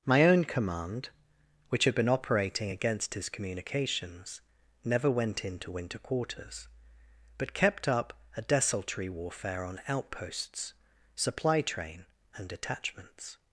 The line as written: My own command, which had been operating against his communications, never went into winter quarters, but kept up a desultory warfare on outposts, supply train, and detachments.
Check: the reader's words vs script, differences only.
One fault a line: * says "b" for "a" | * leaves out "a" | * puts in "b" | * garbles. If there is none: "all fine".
all fine